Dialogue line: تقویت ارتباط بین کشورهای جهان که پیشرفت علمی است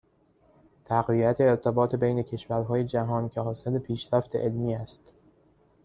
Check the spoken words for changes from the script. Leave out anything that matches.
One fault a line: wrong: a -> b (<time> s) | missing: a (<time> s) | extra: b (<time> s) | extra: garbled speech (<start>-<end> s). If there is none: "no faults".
extra: حاصل (3.4 s)